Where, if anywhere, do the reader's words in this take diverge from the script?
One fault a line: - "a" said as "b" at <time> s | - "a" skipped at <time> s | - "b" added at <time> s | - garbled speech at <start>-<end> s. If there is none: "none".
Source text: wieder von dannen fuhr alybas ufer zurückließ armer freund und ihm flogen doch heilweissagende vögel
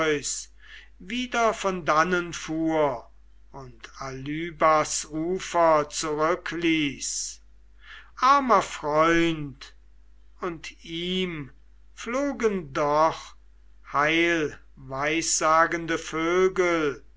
- "und" added at 3.5 s